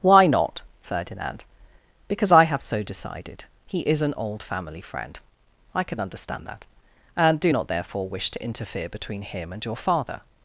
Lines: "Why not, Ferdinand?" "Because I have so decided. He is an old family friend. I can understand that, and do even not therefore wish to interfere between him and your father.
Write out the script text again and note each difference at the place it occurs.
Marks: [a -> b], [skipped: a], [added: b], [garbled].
"Why not, Ferdinand?" "Because I have so decided. He is an old family friend. I can understand that, and do [skipped: even] not therefore wish to interfere between him and your father.